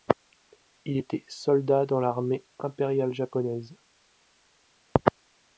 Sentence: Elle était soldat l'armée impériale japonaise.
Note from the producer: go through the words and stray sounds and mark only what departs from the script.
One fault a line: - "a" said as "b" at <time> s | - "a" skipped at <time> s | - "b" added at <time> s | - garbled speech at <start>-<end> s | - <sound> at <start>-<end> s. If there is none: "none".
- "Elle" said as "Il" at 0.8 s
- "dans" added at 1.9 s